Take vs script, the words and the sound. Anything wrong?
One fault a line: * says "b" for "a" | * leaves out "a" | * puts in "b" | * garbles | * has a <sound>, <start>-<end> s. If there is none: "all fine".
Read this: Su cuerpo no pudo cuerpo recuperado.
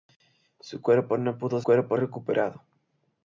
all fine